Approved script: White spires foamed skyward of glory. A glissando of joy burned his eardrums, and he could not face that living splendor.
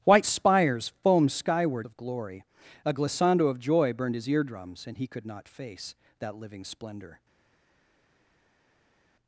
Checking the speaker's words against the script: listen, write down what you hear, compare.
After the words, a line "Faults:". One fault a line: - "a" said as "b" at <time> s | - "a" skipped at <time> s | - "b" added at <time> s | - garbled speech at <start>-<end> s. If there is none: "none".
White spires foamed skyward of glory. A glissando of joy burned his eardrums, and he could not face that living splendor.
Faults:
none